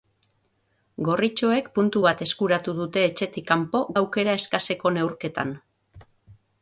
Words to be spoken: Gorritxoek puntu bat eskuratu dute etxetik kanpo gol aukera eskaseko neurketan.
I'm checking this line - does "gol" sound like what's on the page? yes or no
no